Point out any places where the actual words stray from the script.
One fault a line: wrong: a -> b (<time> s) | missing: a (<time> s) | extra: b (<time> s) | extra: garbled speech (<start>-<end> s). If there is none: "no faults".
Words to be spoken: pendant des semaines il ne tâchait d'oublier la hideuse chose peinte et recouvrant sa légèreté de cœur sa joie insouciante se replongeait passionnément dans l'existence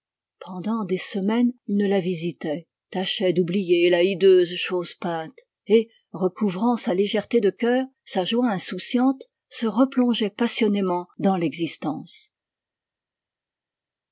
extra: la visitait (1.9 s)